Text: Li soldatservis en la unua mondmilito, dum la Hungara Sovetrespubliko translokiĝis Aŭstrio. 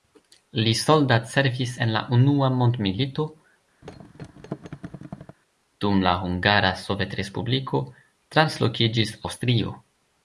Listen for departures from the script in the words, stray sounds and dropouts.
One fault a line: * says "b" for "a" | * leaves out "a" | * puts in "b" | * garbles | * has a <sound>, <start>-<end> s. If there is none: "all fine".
* has a thud, 3.8-5.4 s